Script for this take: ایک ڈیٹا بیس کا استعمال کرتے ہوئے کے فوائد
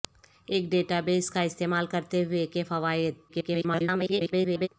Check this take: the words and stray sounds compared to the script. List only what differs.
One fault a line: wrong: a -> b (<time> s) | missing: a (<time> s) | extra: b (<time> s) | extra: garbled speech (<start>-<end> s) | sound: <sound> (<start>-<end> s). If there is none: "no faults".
extra: garbled speech (3.3-4.7 s)